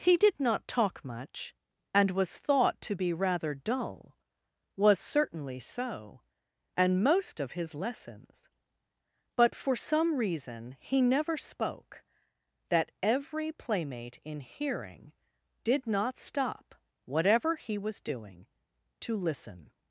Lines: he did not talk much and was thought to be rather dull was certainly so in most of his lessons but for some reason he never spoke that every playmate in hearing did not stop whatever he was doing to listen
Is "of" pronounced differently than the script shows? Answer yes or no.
no